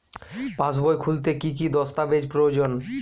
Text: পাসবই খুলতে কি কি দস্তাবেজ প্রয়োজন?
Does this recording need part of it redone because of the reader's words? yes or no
no